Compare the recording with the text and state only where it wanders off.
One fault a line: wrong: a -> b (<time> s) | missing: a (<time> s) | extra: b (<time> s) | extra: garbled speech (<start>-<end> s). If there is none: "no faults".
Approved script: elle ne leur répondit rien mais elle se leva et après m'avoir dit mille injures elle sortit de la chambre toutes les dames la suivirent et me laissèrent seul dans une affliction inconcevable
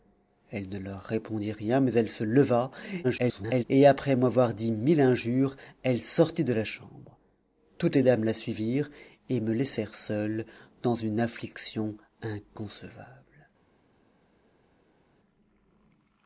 extra: garbled speech (3.0-3.6 s)